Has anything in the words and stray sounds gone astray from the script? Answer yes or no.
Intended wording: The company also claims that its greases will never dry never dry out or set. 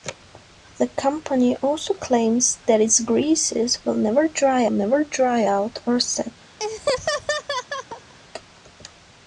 yes